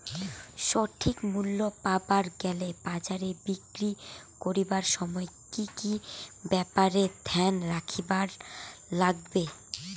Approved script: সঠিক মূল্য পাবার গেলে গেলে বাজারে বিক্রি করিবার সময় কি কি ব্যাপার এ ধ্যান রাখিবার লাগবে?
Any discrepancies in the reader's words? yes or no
yes